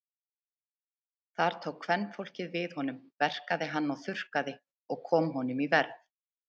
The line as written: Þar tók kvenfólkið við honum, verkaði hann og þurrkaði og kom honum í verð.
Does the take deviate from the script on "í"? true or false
false